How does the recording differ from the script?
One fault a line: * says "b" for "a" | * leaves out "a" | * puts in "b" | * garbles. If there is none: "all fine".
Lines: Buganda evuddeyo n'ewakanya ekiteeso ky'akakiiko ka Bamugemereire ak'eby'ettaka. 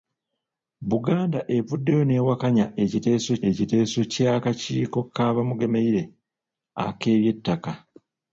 * puts in "ekiteeso"